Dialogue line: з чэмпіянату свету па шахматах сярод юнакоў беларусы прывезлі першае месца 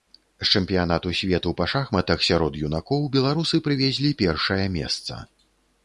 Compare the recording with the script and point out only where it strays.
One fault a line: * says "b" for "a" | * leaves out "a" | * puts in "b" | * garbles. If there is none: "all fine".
all fine